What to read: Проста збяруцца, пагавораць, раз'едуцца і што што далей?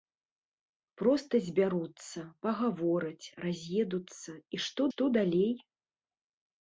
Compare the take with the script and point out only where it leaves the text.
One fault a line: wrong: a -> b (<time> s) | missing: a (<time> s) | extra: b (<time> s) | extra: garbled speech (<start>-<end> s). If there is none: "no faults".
no faults